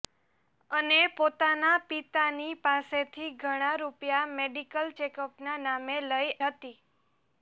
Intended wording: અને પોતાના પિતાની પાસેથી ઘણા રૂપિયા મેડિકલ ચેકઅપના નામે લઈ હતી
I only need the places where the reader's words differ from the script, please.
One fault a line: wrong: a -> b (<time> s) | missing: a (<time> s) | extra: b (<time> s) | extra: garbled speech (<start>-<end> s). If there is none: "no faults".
no faults